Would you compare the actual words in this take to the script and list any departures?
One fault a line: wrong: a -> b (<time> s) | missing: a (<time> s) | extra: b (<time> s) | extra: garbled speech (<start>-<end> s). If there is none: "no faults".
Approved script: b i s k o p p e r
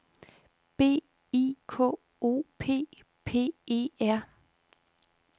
missing: s (1.6 s)